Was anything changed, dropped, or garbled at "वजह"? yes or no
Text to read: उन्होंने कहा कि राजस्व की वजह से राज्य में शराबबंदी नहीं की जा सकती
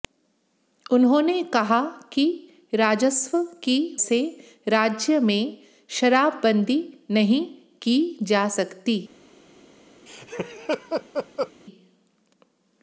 yes